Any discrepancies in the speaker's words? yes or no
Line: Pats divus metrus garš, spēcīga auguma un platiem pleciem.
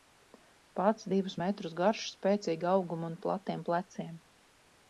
no